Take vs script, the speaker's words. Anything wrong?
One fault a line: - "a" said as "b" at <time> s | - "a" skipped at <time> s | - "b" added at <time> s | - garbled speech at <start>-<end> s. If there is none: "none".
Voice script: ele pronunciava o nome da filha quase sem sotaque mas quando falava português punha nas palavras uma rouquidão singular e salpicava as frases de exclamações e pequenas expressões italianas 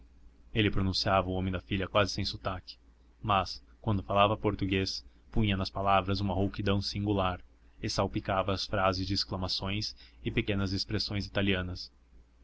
none